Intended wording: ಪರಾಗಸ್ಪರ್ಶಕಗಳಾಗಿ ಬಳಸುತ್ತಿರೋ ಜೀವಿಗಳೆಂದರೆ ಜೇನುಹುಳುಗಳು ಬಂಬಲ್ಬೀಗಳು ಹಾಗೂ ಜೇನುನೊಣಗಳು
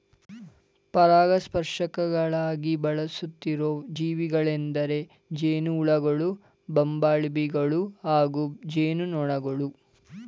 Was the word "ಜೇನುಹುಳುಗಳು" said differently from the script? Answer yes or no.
no